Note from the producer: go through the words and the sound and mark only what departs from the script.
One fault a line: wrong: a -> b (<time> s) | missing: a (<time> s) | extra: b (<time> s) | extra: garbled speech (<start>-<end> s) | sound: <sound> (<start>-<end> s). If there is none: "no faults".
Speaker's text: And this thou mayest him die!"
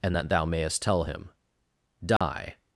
wrong: this -> that (0.2 s)
extra: tell (0.8 s)
sound: dropout (2.2-2.2 s)